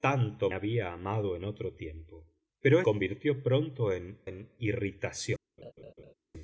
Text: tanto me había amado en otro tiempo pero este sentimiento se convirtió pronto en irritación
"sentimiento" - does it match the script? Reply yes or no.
no